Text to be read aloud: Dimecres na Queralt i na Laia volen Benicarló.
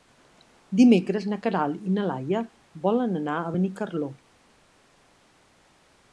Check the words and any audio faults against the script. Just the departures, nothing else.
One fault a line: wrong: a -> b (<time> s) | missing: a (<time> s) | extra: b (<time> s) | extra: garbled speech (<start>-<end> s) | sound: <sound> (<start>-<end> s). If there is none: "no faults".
extra: anar a (3.2 s)